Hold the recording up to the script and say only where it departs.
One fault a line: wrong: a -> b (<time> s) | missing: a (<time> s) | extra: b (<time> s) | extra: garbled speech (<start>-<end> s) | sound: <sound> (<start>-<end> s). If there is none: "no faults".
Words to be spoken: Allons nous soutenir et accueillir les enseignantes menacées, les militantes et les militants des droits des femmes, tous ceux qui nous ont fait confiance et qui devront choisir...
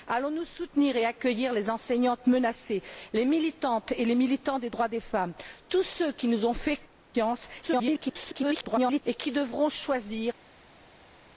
extra: garbled speech (7.6-9.0 s)